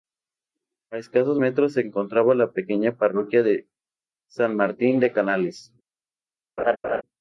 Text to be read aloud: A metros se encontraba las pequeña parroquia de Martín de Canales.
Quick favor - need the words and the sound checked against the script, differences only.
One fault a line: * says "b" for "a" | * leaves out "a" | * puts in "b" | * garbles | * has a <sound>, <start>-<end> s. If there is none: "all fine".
* puts in "escasos"
* says "la" for "las"
* puts in "San"
* has a laugh, 6.6-7.0 s